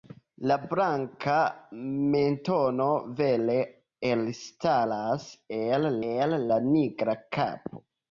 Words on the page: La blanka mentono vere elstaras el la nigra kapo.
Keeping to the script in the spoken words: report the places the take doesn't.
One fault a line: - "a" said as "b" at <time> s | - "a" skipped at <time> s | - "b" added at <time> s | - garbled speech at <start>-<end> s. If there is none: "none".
- "el" added at 6.1 s